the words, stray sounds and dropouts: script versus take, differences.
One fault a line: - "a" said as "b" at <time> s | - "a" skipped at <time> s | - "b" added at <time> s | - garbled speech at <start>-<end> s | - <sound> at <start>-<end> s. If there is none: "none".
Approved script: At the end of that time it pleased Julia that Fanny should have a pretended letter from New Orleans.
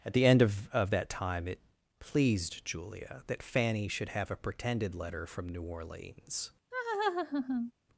- "of" added at 0.7 s
- laugh at 6.7-7.7 s